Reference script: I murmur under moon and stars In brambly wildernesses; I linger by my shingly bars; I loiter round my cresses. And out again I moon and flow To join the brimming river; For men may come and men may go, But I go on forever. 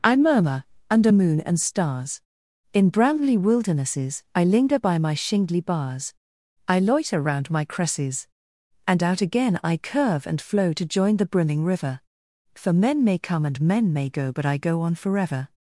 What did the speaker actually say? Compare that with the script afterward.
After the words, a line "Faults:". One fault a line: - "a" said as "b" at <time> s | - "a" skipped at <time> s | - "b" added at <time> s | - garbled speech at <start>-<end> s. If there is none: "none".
I murmur under moon and stars In brambly wildernesses; I linger by my shingly bars; I loiter round my cresses. And out again I curve and flow To join the brimming river; For men may come and men may go, But I go on forever.
Faults:
- "moon" said as "curve" at 9.8 s